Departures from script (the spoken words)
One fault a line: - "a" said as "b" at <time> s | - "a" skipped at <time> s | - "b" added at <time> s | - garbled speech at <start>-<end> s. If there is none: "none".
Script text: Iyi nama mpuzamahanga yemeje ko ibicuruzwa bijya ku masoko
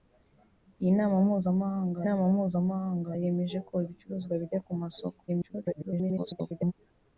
- "nama mpuzamahanga" added at 2.0 s
- garbled speech at 5.3-6.7 s